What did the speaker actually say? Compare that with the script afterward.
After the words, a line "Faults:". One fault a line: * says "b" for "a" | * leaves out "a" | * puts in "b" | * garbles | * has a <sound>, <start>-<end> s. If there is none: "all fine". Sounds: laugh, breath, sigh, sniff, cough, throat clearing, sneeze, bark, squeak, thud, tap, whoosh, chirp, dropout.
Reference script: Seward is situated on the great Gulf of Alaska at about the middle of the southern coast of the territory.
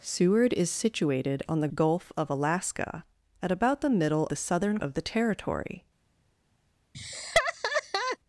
Seward is situated on the Gulf of Alaska at about the middle the southern of the territory.
Faults:
* leaves out "great"
* leaves out "of"
* leaves out "coast"
* has a laugh, 6.9-8.2 s